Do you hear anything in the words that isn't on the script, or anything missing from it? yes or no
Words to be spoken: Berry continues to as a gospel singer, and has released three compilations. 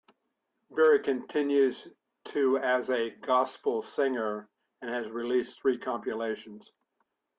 no